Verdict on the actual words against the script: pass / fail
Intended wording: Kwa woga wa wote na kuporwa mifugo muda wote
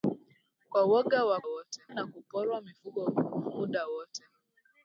pass